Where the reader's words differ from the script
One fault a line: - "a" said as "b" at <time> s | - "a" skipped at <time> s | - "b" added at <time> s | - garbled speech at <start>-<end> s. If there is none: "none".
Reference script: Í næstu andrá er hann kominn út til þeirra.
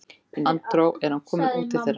- "næstu" skipped at 0.4 s